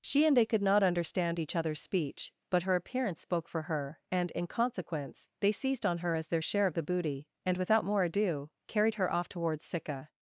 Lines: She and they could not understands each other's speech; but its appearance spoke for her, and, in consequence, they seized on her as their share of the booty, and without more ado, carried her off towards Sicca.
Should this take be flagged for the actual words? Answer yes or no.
yes